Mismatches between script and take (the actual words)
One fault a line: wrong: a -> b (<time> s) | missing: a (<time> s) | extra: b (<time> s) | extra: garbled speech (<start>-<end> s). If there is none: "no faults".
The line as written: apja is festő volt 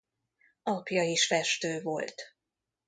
no faults